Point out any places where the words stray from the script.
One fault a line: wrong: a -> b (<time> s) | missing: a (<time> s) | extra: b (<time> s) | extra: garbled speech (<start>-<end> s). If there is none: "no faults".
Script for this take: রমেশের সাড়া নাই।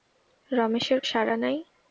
no faults